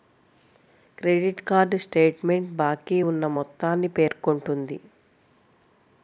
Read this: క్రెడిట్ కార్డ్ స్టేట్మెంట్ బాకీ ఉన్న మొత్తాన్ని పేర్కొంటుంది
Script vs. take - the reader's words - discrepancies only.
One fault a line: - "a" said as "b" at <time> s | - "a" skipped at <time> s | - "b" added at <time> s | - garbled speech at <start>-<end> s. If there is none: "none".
none